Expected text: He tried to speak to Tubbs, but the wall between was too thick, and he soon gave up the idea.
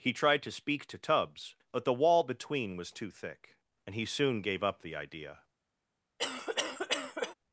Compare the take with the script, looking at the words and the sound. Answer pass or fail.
fail